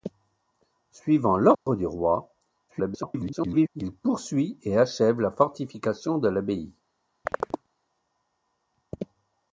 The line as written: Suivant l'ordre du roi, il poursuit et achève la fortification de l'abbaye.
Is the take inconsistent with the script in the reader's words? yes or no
yes